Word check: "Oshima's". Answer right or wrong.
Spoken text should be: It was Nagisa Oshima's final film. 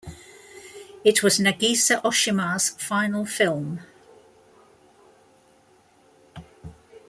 right